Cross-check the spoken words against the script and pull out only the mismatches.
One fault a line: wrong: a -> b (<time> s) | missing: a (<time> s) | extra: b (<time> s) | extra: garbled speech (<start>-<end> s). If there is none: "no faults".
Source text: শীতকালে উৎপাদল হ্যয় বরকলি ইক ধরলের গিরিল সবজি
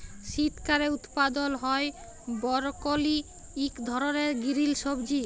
no faults